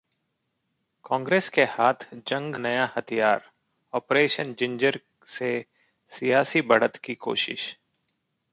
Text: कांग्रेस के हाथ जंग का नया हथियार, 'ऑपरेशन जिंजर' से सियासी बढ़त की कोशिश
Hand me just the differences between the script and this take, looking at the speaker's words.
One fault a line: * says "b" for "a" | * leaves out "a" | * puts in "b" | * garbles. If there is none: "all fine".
* leaves out "का"